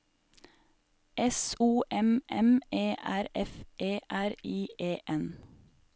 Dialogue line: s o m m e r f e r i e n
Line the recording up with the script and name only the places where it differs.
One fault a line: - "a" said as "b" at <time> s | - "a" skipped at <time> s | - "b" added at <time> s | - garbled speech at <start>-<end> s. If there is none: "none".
none